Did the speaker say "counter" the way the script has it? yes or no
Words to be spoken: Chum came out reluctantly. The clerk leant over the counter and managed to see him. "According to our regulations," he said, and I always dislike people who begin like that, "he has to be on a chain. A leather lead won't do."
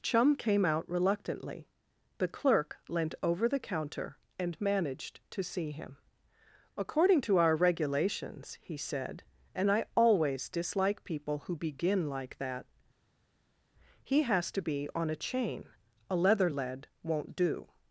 yes